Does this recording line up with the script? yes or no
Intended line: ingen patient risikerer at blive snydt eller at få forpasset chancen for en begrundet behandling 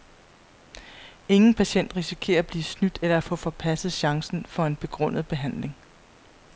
yes